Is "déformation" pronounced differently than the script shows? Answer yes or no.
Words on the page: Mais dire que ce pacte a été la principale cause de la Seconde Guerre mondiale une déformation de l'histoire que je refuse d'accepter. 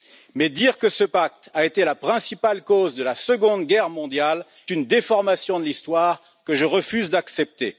no